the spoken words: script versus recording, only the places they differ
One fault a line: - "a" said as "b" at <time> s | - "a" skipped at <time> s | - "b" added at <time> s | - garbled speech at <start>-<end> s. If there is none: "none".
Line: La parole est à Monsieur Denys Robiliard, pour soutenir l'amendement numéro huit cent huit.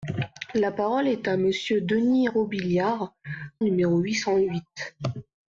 - "pour soutenir l'amendement" skipped at 3.2 s